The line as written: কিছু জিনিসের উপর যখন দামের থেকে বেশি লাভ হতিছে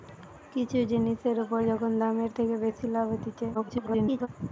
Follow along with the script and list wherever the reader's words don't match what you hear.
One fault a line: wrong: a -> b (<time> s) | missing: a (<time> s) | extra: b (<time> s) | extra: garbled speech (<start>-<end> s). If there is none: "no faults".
extra: garbled speech (3.5-4.3 s)